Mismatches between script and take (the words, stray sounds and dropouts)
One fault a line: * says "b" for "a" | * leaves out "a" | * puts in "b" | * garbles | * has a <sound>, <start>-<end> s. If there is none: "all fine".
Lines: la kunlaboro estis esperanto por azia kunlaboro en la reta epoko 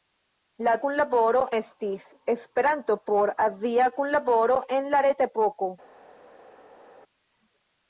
all fine